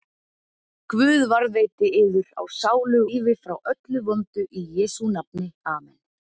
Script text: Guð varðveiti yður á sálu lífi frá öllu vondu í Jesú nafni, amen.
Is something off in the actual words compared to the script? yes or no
no